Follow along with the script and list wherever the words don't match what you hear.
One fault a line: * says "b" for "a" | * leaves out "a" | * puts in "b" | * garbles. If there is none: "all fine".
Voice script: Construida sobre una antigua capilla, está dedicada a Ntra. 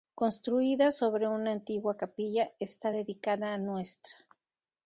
all fine